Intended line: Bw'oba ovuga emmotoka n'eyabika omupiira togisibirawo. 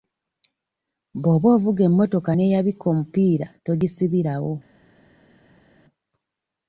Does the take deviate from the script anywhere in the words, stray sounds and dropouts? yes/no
no